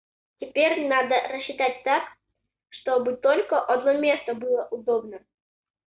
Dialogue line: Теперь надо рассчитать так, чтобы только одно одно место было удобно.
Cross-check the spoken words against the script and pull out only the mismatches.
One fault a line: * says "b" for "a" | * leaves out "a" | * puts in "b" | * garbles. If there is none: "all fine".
* leaves out "одно"